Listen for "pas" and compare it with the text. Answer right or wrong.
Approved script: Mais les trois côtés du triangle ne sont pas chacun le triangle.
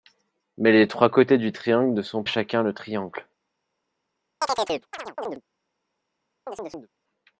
wrong